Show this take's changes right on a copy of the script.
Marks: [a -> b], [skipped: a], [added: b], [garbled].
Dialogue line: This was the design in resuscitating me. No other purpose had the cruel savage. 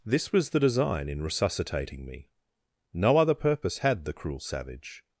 This was the design in resuscitating me. No other purpose had the cruel savage.